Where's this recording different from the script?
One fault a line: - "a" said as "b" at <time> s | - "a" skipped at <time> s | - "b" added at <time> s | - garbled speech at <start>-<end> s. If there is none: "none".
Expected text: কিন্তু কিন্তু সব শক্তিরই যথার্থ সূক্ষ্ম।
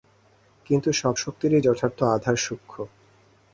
- "কিন্তু" skipped at 0.9 s
- "আধার" added at 2.1 s